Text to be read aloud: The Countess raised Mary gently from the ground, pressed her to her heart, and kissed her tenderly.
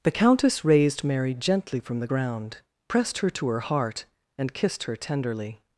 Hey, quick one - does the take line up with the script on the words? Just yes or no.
yes